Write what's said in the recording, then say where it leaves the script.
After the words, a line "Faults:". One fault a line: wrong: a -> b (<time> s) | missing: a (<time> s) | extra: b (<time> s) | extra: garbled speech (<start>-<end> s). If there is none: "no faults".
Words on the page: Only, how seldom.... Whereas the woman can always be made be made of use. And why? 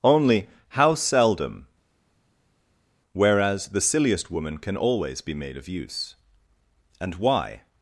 Only, how seldom.... Whereas the silliest woman can always be made of use. And why?
Faults:
extra: silliest (3.8 s)
missing: be made (5.6 s)